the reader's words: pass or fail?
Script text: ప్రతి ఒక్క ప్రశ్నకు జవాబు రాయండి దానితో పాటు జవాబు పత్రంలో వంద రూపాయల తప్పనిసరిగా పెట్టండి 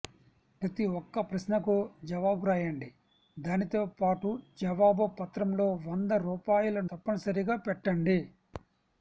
pass